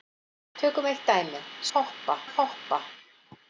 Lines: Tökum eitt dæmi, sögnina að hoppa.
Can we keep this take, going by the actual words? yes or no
no